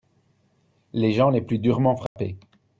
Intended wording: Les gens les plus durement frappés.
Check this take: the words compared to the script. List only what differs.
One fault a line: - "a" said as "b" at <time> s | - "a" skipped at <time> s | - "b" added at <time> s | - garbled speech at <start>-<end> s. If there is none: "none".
none